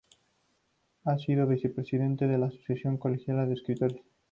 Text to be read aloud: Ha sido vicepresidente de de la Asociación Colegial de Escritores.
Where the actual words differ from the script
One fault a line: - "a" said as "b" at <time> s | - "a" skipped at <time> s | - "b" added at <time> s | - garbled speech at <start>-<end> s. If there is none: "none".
- "de" skipped at 2.4 s